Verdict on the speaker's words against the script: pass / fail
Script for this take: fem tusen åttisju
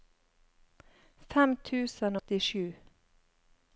pass